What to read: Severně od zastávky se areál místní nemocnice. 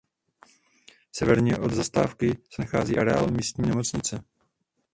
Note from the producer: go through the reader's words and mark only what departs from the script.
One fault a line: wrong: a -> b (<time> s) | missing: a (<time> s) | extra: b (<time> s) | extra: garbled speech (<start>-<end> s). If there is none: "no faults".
extra: nachází (2.6 s)